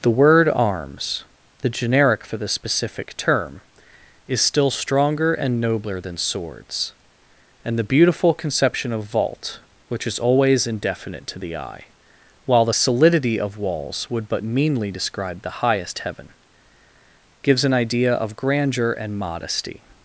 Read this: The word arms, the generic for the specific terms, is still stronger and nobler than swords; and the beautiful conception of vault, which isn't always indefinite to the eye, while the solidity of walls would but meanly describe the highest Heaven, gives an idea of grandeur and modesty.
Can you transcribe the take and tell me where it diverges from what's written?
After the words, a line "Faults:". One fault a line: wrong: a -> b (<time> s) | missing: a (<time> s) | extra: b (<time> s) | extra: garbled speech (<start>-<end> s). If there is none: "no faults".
The word arms, the generic for the specific term, is still stronger and nobler than swords; and the beautiful conception of vault, which is always indefinite to the eye, while the solidity of walls would but meanly describe the highest Heaven, gives an idea of grandeur and modesty.
Faults:
wrong: terms -> term (3.2 s)
wrong: isn't -> is (10.1 s)